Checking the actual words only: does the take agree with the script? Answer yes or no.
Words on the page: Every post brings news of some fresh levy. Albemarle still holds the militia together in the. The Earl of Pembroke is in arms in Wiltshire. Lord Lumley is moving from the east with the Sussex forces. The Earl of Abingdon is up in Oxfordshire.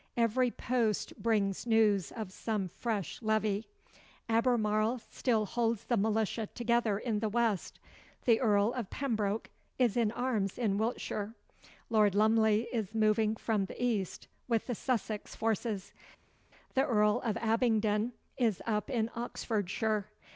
no